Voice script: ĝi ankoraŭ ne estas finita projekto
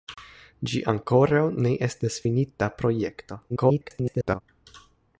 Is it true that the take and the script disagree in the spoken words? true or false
true